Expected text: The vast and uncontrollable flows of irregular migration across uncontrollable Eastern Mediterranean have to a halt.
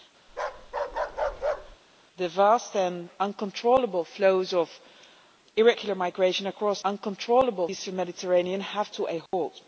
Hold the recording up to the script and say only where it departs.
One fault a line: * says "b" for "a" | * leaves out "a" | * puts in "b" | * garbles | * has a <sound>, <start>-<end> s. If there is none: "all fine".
* has a bark, 0.3-1.8 s
* has a dropout, 9.3-9.3 s